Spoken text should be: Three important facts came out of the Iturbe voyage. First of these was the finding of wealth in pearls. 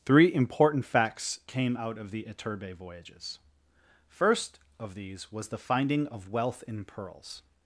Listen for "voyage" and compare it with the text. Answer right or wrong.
wrong